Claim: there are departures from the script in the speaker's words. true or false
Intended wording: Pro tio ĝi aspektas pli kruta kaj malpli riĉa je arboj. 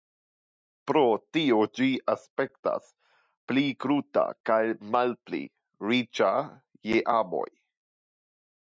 false